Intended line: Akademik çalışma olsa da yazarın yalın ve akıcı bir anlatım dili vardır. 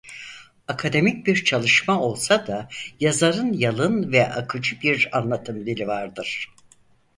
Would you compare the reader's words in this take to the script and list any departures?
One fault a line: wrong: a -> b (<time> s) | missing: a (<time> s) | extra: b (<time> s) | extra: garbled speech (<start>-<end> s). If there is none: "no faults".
extra: bir (1.3 s)